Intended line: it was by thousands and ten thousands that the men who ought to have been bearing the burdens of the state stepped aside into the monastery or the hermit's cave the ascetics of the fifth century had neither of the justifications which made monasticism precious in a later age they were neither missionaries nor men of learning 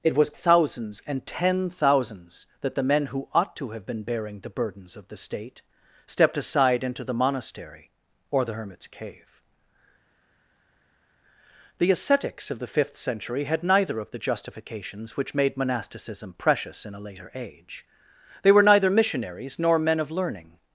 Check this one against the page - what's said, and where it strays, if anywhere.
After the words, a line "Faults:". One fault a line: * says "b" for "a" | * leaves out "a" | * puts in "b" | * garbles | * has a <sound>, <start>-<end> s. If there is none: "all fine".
it was thousands and ten thousands that the men who ought to have been bearing the burdens of the state stepped aside into the monastery or the hermit's cave the ascetics of the fifth century had neither of the justifications which made monasticism precious in a later age they were neither missionaries nor men of learning
Faults:
* leaves out "by"